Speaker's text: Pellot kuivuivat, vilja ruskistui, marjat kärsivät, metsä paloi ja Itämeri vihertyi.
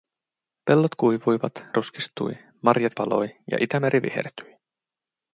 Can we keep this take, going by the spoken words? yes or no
no